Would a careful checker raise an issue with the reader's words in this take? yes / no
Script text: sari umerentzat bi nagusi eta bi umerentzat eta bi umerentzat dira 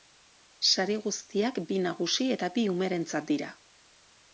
yes